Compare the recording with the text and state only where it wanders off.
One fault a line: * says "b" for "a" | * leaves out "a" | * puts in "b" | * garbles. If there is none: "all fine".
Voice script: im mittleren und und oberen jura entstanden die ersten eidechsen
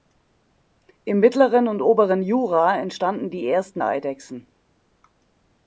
* leaves out "und"